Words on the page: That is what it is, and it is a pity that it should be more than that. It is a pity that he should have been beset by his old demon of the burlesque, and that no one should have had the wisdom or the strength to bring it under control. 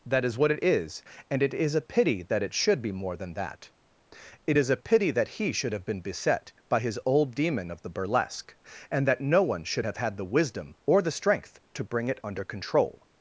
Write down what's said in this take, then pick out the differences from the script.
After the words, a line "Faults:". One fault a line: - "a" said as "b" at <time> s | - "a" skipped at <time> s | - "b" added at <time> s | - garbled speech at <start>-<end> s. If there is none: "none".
That is what it is, and it is a pity that it should be more than that. It is a pity that he should have been beset by his old demon of the burlesque, and that no one should have had the wisdom or the strength to bring it under control.
Faults:
none